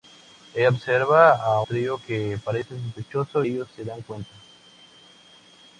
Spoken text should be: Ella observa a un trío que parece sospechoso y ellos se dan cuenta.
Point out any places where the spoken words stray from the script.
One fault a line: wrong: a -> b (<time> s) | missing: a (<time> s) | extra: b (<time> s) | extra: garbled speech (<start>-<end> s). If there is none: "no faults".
missing: un (1.6 s)
missing: y (3.4 s)